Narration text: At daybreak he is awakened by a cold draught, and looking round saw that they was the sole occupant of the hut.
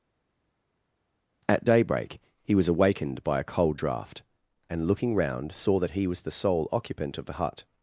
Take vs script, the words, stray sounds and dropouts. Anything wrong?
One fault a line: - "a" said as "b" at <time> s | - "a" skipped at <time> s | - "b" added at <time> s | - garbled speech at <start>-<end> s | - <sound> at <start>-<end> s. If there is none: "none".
- "is" said as "was" at 2.5 s
- "they" said as "he" at 5.9 s